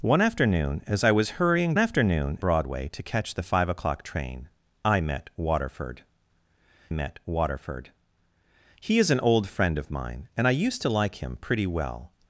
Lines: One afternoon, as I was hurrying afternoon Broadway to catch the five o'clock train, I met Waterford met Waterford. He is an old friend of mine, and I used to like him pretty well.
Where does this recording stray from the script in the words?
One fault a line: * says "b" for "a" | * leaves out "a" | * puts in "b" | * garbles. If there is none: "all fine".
all fine